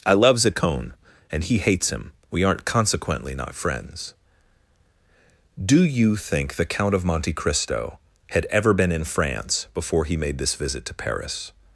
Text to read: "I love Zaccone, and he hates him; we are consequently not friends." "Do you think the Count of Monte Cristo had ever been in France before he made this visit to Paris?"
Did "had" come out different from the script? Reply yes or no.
no